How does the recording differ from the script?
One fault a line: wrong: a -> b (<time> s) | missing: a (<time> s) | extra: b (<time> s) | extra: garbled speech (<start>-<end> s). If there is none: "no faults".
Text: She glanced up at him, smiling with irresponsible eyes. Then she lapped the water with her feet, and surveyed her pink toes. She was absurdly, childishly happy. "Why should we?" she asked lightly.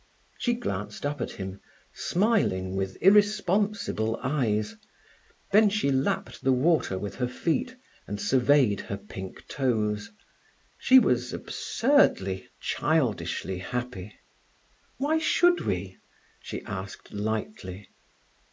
no faults